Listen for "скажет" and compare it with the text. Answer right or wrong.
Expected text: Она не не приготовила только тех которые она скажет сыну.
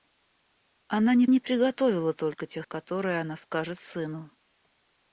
right